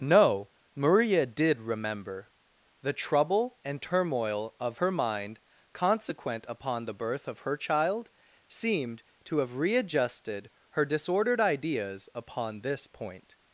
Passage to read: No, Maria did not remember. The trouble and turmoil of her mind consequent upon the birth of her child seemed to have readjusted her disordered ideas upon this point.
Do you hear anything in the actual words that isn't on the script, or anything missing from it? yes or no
yes